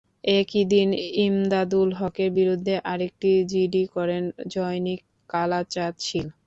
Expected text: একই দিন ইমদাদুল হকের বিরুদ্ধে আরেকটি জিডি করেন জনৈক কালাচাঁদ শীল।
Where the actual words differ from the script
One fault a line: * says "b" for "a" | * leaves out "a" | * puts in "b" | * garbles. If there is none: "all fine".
all fine